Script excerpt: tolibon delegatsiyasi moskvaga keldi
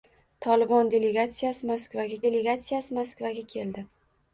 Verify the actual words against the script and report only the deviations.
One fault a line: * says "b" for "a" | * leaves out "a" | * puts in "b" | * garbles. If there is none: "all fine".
* puts in "delegatsiyasi moskvaga"